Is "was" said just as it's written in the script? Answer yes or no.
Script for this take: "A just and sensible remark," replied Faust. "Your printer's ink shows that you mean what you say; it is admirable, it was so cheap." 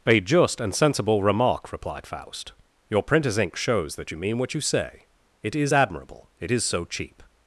no